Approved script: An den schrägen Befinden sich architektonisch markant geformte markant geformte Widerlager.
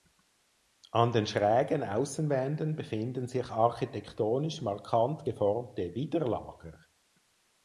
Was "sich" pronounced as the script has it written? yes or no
yes